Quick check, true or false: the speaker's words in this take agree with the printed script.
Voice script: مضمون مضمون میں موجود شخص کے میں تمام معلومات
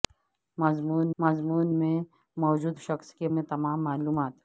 true